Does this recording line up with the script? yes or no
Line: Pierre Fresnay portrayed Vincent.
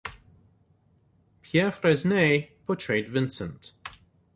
yes